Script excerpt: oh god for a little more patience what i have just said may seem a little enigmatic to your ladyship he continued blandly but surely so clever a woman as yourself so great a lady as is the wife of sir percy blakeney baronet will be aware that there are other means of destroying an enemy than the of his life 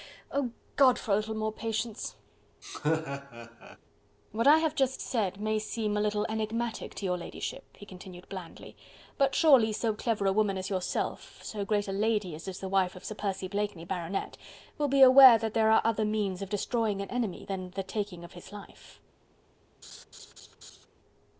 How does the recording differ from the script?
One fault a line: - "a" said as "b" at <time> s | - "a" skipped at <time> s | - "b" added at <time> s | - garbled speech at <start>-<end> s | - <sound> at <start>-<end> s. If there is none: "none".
- laugh at 2.6-3.8 s
- "taking" added at 17.8 s
- laugh at 19.8-20.9 s